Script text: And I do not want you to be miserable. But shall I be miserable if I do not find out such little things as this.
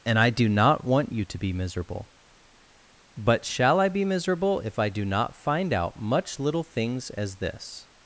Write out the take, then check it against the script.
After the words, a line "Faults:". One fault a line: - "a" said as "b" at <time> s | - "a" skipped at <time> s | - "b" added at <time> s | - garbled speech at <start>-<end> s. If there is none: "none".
And I do not want you to be miserable. But shall I be miserable if I do not find out much little things as this.
Faults:
- "such" said as "much" at 6.0 s